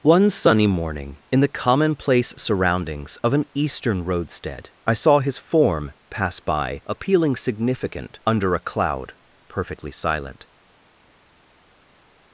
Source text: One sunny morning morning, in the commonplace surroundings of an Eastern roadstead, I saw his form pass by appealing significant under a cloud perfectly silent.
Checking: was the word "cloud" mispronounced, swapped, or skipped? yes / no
no